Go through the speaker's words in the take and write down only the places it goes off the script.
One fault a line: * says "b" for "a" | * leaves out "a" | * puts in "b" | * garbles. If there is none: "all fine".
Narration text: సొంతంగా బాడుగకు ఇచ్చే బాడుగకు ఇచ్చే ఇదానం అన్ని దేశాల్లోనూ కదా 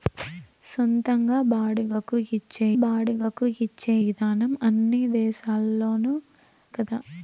all fine